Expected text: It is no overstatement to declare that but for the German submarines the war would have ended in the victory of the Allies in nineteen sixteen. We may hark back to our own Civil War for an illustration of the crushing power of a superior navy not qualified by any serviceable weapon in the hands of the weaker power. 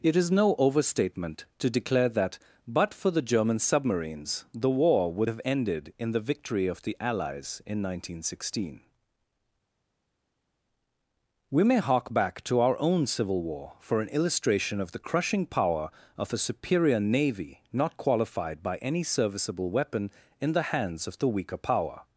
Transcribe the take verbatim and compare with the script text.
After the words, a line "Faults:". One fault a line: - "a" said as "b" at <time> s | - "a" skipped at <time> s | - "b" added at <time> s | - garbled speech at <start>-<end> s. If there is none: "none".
It is no overstatement to declare that but for the German submarines the war would have ended in the victory of the Allies in nineteen sixteen. We may hark back to our own Civil War for an illustration of the crushing power of a superior navy not qualified by any serviceable weapon in the hands of the weaker power.
Faults:
none